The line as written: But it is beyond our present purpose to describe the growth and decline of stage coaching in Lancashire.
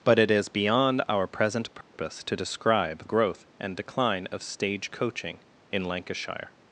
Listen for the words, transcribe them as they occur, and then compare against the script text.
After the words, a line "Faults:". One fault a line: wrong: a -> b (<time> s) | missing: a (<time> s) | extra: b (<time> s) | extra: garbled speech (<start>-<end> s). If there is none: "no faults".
But it is beyond our present purpose to describe growth and decline of stage coaching in Lancashire.
Faults:
missing: the (3.0 s)